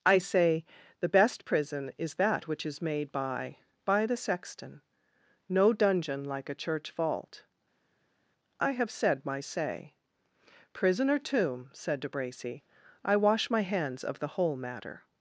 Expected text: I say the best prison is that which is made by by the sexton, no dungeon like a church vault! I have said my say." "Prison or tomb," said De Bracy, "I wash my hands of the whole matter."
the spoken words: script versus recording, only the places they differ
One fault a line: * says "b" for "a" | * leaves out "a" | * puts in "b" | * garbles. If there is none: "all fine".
all fine